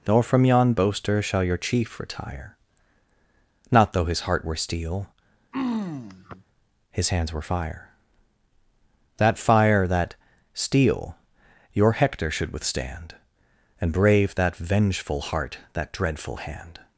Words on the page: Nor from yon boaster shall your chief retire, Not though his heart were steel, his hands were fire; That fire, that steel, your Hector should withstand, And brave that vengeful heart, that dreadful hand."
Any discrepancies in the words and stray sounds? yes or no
yes